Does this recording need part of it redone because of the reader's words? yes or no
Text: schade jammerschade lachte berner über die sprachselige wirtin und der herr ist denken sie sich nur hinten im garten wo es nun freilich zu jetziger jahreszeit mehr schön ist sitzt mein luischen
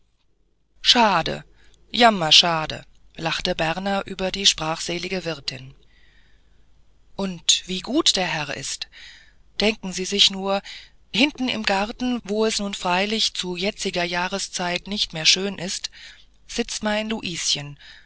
yes